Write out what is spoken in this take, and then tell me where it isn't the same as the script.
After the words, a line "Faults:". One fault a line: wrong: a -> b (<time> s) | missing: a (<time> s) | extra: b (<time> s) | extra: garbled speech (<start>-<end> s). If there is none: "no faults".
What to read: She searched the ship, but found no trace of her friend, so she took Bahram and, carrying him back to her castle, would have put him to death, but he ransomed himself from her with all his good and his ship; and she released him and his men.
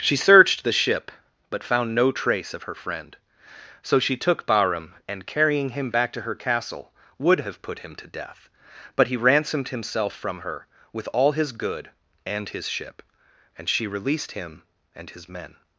She searched the ship, but found no trace of her friend, so she took Bahram and, carrying him back to her castle, would have put him to death, but he ransomed himself from her with all his good and his ship; and she released him and his men.
Faults:
no faults